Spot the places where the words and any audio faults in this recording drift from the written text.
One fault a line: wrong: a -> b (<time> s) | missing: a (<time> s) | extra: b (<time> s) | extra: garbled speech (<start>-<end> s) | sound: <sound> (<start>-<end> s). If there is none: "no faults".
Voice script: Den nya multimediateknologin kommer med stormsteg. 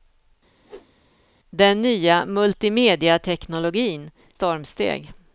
sound: whoosh (0.6-0.9 s)
missing: kommer med (4.1 s)